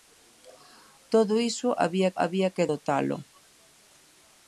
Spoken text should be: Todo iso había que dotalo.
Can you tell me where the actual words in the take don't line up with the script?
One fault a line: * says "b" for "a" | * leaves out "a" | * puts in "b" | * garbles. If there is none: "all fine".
* puts in "había"